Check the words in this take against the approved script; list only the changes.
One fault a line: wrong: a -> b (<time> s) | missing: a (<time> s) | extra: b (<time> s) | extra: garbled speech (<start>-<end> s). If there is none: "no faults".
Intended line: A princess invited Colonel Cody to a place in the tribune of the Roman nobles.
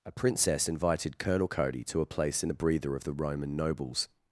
wrong: tribune -> breather (2.5 s)